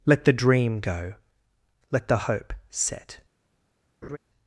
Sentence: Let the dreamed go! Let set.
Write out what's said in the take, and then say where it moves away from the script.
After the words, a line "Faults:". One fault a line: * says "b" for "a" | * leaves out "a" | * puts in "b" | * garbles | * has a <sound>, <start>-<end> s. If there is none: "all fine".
Let the dream go! Let the hope set.
Faults:
* says "dream" for "dreamed"
* puts in "the hope"
* has a laugh, 4.0-4.2 s